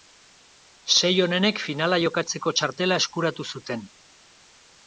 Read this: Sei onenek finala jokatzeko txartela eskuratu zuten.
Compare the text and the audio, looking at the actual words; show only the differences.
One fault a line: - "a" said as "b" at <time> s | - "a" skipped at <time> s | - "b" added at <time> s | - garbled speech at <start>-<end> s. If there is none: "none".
none